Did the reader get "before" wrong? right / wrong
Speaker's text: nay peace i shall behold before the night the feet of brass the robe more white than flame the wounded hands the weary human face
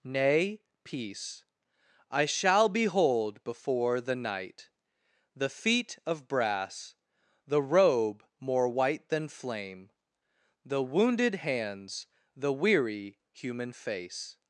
right